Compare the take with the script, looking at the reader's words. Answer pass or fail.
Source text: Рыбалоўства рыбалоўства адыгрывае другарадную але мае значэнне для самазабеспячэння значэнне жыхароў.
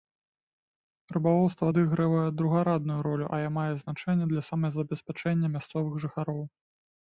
fail